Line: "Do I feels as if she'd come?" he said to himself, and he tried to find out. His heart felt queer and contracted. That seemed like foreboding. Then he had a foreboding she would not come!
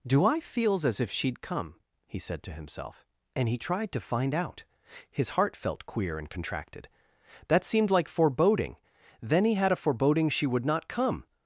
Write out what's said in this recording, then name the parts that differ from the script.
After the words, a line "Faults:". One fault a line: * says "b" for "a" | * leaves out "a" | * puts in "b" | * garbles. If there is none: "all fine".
"Do I feels as if she'd come?" he said to himself, and he tried to find out. His heart felt queer and contracted. That seemed like foreboding. Then he had a foreboding she would not come!
Faults:
all fine